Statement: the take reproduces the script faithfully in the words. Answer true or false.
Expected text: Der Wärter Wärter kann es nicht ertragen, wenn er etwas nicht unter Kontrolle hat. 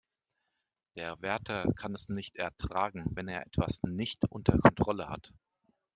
false